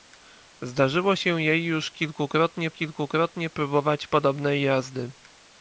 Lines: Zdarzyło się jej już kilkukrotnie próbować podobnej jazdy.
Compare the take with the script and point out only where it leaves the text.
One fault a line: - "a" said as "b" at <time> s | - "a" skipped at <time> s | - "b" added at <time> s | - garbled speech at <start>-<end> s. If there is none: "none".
- "kilkukrotnie" added at 2.7 s